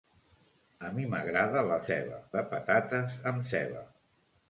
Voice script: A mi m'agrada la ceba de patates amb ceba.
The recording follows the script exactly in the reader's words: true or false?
true